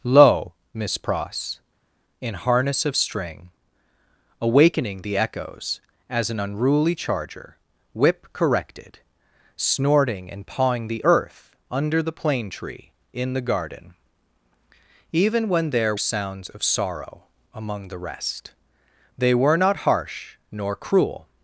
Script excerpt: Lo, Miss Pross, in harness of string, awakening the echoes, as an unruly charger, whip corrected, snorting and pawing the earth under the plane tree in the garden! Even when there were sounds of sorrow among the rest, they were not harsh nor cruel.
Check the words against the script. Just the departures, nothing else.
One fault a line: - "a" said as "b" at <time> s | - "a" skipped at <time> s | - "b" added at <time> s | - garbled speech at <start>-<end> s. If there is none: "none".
- "were" skipped at 15.9 s